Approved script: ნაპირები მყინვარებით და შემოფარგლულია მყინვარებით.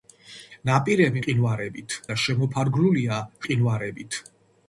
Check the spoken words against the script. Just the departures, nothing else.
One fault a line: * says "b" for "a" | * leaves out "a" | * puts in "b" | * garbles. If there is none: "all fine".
all fine